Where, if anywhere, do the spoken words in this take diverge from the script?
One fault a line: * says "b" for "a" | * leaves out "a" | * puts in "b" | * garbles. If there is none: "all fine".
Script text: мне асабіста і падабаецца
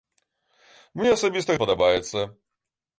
all fine